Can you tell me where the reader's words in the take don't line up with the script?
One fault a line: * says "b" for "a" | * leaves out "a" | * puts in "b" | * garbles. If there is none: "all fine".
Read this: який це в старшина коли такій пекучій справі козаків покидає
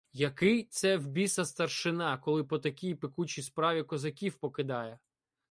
* puts in "біса"
* puts in "по"